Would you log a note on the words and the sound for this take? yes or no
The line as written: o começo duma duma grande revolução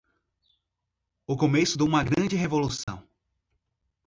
yes